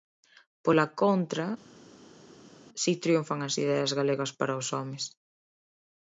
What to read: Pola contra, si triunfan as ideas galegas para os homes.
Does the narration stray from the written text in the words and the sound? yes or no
no